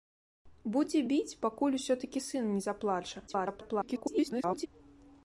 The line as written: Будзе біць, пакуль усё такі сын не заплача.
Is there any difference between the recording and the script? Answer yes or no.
yes